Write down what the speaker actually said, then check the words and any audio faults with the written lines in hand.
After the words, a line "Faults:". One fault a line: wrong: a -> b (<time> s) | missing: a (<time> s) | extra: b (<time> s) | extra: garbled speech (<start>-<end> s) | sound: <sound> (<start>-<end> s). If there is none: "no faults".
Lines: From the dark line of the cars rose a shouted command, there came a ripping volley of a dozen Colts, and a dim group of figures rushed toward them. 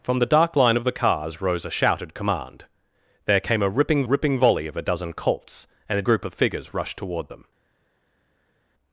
From the dark line of the cars rose a shouted command, there came a ripping ripping volley of a dozen Colts, and a group of figures rushed toward them.
Faults:
extra: ripping (4.0 s)
missing: dim (6.0 s)